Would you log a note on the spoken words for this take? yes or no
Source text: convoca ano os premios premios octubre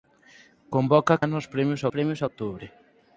no